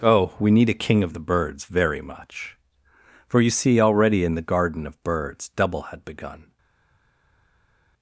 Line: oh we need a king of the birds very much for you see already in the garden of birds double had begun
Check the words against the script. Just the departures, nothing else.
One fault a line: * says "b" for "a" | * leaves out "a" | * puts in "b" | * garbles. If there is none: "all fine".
all fine